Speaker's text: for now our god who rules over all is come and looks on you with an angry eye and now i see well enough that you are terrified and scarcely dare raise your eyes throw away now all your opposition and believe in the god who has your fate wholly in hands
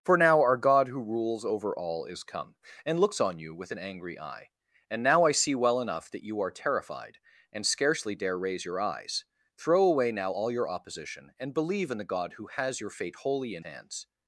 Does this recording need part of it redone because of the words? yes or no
no